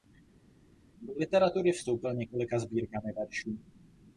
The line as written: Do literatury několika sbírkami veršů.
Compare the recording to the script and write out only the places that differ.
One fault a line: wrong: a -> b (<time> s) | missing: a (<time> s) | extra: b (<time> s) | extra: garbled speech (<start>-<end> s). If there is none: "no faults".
extra: vstoupil (1.7 s)